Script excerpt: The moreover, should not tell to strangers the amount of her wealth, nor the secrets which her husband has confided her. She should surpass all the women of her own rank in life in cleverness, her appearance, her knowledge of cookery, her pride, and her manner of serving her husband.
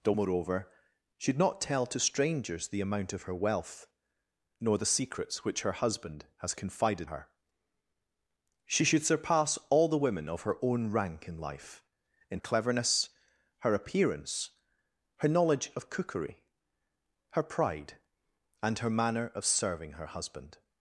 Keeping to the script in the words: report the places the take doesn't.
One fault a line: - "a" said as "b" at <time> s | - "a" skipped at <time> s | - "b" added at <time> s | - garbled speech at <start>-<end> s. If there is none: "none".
none